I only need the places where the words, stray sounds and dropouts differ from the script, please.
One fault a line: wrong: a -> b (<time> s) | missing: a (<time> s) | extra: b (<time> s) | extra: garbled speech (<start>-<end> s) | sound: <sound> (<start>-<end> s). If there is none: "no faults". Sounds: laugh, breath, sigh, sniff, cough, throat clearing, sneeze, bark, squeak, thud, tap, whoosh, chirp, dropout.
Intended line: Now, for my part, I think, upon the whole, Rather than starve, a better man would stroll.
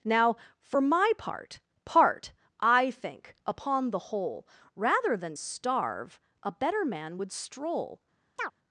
extra: part (1.9 s)
sound: chirp (8.4-8.5 s)